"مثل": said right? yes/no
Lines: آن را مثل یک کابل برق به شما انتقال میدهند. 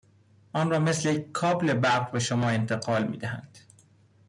yes